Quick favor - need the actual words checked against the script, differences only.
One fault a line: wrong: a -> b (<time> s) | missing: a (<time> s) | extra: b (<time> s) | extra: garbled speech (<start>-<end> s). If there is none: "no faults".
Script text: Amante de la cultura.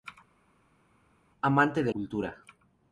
missing: la (1.9 s)